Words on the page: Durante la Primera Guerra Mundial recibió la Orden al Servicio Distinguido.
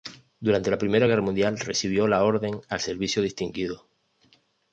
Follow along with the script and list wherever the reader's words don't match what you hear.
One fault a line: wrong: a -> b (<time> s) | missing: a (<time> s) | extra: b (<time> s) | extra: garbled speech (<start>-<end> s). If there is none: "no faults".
no faults